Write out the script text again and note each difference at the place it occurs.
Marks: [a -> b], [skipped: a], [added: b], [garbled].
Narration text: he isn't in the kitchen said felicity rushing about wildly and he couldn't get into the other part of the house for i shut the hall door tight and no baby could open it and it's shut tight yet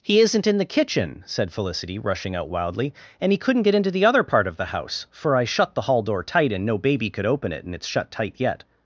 he isn't in the kitchen said felicity rushing [about -> out] wildly and he couldn't get into the other part of the house for i shut the hall door tight and no baby could open it and it's shut tight yet